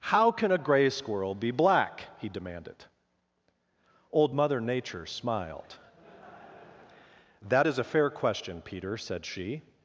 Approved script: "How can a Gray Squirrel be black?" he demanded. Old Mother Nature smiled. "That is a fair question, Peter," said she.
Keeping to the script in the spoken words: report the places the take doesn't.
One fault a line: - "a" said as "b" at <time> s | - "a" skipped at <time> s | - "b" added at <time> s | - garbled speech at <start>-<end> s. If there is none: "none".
none